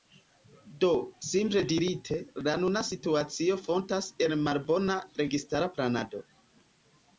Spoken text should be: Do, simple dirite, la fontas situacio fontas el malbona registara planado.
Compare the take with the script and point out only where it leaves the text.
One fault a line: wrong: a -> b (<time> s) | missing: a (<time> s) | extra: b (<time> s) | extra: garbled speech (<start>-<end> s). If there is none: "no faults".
wrong: fontas -> nuna (2.6 s)